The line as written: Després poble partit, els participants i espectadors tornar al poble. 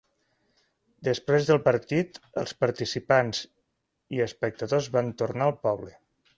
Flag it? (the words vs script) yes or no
yes